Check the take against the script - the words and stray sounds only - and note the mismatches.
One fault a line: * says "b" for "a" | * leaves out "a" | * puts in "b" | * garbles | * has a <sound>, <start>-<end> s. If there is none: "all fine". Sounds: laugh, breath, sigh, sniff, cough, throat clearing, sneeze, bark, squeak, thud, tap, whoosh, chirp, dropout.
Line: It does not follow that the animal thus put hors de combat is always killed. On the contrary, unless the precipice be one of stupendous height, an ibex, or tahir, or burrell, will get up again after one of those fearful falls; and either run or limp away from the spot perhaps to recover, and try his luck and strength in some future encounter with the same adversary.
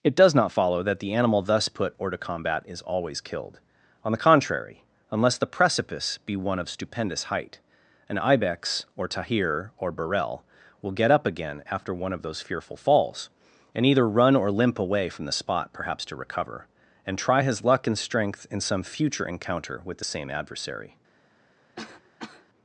* has a cough, 21.8-22.5 s